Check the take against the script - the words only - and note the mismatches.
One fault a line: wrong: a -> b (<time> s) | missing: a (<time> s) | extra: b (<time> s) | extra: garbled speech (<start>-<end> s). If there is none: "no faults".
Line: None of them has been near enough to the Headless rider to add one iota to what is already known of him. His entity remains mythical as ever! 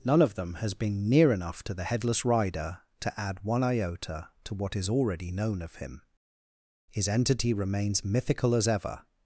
no faults